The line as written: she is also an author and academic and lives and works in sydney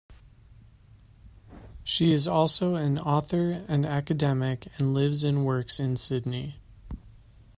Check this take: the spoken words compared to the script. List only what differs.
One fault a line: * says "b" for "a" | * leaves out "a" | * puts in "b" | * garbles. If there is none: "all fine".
all fine